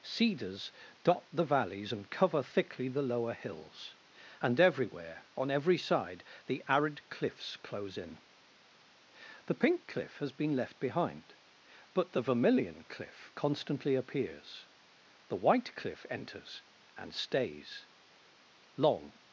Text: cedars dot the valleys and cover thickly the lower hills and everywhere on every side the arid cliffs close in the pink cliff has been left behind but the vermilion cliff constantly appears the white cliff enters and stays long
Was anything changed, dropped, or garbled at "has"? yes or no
no